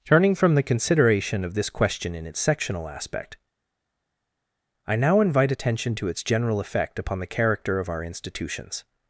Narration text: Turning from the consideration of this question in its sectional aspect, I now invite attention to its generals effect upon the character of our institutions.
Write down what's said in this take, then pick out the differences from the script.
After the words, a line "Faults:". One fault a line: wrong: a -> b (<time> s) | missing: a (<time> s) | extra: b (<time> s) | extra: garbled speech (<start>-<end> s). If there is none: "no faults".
Turning from the consideration of this question in its sectional aspect, I now invite attention to its general effect upon the character of our institutions.
Faults:
wrong: generals -> general (6.2 s)